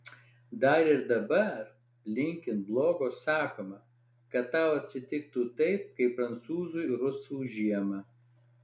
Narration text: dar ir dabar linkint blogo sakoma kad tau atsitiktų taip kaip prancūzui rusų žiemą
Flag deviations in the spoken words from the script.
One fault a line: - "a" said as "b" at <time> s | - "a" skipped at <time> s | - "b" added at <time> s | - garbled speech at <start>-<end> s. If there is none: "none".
none